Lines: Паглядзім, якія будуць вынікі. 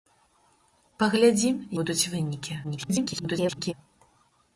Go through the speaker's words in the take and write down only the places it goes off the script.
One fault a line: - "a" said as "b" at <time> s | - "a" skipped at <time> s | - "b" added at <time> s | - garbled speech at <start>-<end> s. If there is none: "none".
- "якія" skipped at 1.6 s
- garbled speech at 2.6-3.7 s